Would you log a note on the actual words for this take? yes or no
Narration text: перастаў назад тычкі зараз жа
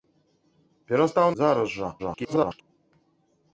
yes